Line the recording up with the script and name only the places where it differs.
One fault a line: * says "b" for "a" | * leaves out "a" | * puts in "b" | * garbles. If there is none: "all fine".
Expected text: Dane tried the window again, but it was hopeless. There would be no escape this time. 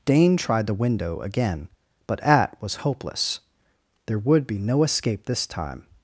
* says "at" for "it"